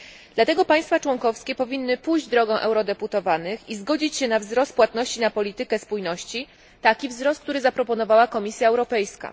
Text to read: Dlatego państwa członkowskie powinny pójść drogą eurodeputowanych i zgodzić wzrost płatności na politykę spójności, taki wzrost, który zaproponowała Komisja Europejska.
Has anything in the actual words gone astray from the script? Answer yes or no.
yes